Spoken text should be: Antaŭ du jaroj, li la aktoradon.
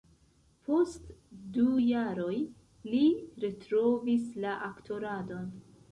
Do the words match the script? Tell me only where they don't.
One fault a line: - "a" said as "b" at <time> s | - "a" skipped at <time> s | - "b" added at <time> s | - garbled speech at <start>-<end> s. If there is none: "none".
- "Antaŭ" said as "Post" at 0.7 s
- "retrovis" added at 3.5 s